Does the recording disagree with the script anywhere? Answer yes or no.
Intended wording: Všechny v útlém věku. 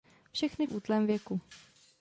no